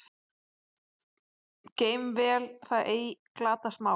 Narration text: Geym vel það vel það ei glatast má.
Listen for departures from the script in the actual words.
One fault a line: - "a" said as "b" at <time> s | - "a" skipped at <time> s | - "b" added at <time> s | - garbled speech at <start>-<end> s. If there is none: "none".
- "vel það" skipped at 2.9 s